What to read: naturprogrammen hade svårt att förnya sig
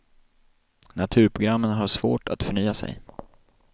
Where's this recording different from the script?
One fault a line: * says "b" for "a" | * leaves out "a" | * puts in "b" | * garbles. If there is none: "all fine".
* says "har" for "hade"